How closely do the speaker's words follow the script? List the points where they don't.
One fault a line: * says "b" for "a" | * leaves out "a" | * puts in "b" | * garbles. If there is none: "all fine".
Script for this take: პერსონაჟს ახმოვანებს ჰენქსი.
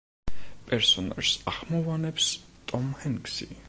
* puts in "ტომ"